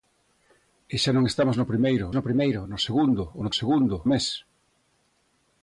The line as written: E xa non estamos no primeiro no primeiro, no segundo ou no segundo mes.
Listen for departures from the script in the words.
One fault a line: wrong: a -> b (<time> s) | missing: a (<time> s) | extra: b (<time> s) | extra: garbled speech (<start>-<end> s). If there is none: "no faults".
no faults